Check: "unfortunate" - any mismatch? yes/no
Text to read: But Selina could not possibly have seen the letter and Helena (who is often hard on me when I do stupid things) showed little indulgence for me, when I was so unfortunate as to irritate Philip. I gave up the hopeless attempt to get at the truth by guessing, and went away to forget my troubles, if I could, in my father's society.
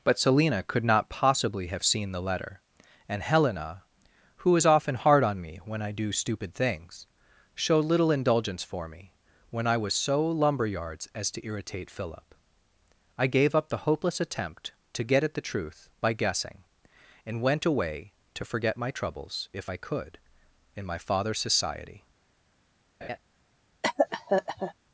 yes